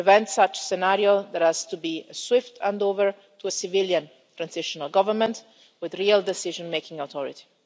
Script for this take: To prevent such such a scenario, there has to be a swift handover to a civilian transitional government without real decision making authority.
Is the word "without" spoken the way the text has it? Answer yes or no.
no